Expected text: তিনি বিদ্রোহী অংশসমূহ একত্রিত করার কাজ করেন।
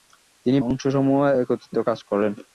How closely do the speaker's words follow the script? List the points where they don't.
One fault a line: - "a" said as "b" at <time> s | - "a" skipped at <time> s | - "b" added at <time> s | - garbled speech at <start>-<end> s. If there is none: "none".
- "বিদ্রোহী" skipped at 0.6 s
- "করার" skipped at 1.8 s